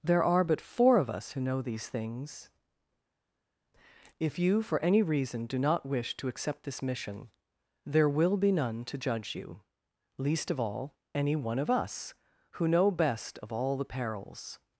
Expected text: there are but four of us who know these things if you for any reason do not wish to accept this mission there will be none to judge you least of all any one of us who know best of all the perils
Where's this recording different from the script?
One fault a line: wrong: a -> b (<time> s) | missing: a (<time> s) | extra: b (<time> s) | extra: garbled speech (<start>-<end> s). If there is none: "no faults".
no faults